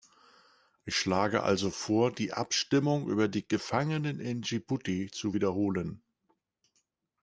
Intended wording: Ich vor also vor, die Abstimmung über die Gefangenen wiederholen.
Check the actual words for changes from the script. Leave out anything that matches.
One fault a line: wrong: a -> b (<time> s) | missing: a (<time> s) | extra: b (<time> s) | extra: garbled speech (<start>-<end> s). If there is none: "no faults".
wrong: vor -> schlage (0.9 s)
extra: in Dschibuti zu (4.2 s)